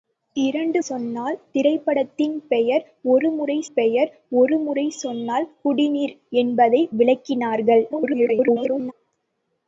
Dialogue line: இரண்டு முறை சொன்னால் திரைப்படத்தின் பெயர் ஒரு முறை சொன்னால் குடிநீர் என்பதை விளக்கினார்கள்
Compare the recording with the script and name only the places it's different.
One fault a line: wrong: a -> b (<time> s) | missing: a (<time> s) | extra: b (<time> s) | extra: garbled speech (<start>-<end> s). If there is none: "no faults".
missing: முறை (0.8 s)
extra: பெயர் ஒரு முறை (3.7 s)
extra: garbled speech (7.9-8.9 s)